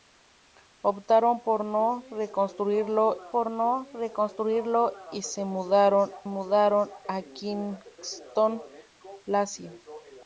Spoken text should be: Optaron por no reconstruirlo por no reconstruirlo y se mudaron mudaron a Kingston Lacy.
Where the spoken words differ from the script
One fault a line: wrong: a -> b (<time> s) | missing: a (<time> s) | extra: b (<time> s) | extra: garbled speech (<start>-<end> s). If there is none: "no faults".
no faults